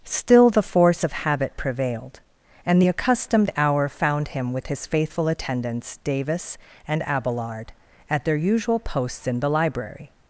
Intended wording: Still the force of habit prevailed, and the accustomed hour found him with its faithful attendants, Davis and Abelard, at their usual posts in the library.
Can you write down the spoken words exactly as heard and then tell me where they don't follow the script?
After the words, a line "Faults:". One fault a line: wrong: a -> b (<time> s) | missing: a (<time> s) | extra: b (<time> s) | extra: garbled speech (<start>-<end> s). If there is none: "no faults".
Still the force of habit prevailed, and the accustomed hour found him with his faithful attendants, Davis and Abelard, at their usual posts in the library.
Faults:
wrong: its -> his (4.7 s)